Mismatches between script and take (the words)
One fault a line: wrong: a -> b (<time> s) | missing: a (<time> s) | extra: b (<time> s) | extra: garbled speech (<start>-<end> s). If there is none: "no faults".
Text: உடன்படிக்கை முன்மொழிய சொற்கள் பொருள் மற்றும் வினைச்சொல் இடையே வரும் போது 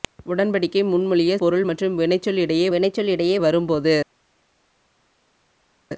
missing: சொற்கள் (1.4 s)
extra: வினைச்சொல் இடையே (2.7 s)